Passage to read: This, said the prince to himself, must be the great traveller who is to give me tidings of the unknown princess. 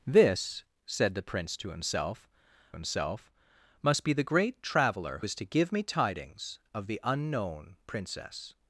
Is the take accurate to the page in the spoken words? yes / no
no